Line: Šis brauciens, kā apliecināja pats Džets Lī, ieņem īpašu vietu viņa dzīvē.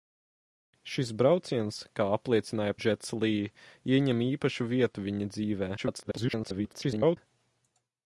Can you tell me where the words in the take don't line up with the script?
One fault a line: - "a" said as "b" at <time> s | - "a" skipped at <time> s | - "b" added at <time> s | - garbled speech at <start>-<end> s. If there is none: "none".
- "pats" skipped at 2.8 s
- garbled speech at 5.8-7.2 s